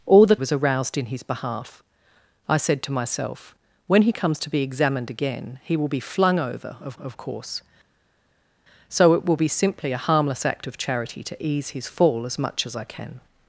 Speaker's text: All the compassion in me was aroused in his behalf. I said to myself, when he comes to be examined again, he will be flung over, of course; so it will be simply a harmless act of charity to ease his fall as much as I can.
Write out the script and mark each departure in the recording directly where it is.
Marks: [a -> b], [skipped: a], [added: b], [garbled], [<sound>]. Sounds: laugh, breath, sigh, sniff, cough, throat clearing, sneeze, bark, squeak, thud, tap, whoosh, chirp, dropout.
All the [skipped: compassion in me] was aroused in his behalf. I said to myself, when he comes to be examined again, he will be flung over, of [added: of] course; so it will be simply a harmless act of charity to ease his fall as much as I can.